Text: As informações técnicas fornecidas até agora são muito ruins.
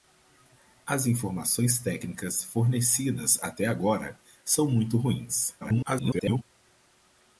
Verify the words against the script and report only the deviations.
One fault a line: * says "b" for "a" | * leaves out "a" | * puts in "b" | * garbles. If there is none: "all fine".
* garbles